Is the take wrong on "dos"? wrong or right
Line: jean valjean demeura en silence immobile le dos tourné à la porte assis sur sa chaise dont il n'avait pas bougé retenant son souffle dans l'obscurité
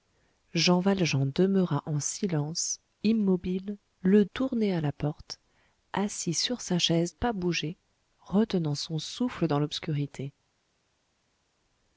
wrong